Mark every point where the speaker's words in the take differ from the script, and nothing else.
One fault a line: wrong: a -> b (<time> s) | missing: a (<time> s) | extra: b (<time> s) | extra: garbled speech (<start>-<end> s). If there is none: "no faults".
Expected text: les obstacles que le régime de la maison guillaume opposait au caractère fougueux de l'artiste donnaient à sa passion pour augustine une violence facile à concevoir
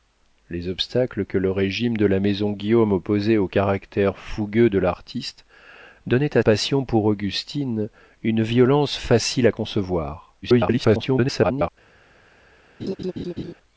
missing: sa (6.4 s)
extra: garbled speech (10.4-11.7 s)